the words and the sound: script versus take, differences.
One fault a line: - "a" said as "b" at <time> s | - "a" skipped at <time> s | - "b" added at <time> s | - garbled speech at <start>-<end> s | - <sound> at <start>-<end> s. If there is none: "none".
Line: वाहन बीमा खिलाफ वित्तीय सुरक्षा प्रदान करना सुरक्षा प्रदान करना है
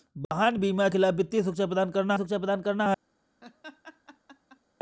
- laugh at 3.4-4.6 s